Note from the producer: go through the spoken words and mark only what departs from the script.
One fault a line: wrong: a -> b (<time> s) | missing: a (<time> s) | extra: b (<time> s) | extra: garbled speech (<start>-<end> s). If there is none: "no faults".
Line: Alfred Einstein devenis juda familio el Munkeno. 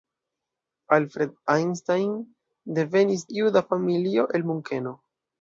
no faults